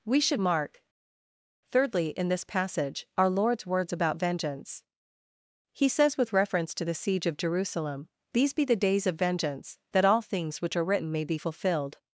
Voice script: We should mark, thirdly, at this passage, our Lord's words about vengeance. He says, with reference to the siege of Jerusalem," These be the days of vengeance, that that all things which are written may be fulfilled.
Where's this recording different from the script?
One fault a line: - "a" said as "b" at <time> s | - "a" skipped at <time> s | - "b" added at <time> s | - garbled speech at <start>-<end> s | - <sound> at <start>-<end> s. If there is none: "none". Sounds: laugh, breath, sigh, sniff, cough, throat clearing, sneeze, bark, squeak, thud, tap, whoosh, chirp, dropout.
- "at" said as "in" at 2.1 s
- "that" skipped at 10.0 s